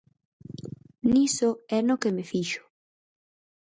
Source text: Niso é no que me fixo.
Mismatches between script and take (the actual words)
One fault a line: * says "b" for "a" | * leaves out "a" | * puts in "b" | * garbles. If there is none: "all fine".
all fine